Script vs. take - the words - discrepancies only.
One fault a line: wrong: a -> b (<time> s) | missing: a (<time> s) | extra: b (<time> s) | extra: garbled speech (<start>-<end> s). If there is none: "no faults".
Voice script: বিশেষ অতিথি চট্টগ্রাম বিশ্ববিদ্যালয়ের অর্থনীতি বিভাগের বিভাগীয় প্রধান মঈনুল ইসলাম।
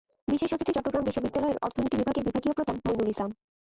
no faults